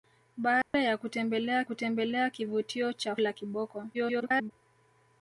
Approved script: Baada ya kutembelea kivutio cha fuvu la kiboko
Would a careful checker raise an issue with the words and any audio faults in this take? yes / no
yes